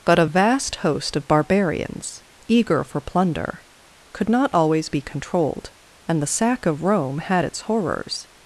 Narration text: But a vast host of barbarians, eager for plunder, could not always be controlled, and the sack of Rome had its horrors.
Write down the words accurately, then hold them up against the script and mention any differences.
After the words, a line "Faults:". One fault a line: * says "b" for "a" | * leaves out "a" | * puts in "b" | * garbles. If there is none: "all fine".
But a vast host of barbarians, eager for plunder, could not always be controlled, and the sack of Rome had its horrors.
Faults:
all fine